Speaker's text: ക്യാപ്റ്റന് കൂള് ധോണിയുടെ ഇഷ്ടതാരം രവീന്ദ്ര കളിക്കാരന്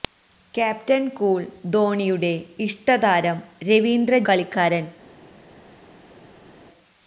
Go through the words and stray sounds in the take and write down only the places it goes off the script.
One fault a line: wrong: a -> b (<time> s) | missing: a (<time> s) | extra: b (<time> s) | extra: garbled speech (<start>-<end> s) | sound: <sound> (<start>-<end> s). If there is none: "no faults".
no faults